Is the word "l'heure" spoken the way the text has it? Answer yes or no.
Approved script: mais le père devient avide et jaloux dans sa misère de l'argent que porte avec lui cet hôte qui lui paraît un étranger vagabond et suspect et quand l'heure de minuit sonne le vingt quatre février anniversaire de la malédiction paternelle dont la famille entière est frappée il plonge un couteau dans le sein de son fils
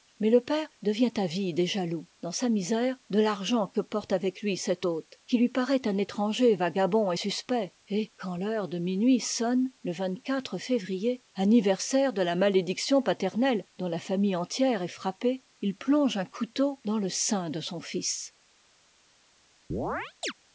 yes